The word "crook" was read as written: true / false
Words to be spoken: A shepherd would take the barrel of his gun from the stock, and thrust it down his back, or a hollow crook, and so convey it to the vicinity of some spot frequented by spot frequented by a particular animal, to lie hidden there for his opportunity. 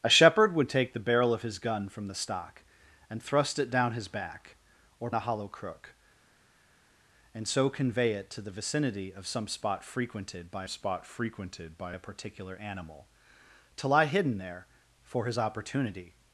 true